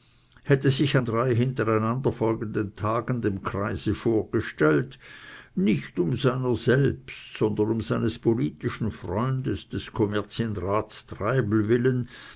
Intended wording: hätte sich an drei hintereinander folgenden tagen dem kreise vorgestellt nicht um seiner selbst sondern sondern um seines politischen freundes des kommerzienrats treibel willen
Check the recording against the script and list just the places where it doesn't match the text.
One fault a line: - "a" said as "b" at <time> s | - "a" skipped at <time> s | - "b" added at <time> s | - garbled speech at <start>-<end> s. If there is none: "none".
- "sondern" skipped at 7.7 s